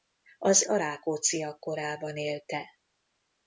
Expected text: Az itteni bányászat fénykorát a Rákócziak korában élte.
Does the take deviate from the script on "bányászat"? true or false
true